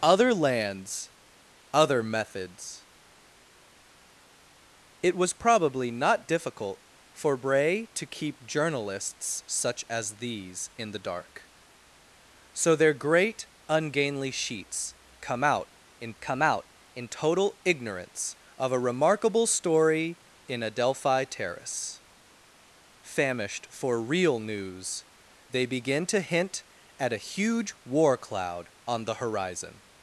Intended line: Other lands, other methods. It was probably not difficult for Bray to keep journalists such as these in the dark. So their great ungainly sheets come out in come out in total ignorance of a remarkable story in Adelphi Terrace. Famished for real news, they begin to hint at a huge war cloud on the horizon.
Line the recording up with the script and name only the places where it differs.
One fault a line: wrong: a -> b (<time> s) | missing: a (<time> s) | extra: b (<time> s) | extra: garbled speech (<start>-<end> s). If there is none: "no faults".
no faults